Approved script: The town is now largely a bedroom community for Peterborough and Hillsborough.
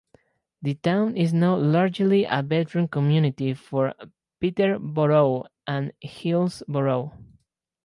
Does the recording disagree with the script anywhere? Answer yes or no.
no